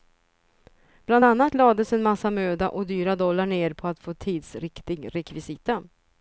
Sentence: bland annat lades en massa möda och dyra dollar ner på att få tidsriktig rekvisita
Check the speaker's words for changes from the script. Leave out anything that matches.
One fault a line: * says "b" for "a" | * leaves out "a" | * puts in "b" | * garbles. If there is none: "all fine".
all fine